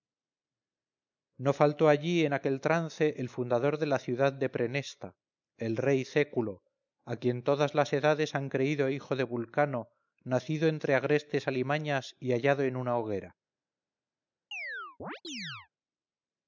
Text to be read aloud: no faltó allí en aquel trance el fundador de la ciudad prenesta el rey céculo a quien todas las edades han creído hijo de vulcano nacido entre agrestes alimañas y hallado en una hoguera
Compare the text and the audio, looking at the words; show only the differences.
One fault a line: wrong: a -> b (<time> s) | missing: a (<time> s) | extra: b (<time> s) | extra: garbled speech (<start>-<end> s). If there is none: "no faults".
extra: de (4.3 s)